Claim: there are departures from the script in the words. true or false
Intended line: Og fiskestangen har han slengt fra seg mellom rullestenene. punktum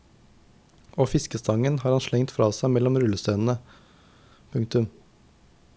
false